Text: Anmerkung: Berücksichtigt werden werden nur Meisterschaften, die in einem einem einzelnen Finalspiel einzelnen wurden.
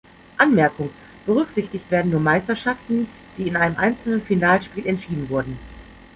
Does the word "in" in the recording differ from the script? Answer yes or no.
no